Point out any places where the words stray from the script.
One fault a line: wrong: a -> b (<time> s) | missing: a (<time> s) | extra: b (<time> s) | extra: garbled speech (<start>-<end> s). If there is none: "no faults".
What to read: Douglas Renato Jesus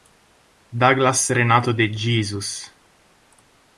extra: de (1.7 s)